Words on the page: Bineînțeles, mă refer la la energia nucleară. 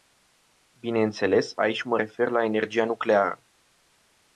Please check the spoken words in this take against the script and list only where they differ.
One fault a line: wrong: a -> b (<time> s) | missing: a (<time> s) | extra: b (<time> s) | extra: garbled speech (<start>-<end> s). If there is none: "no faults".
extra: aici (1.6 s)
missing: la (2.4 s)